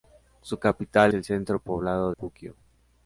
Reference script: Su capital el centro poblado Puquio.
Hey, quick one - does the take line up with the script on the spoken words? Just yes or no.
yes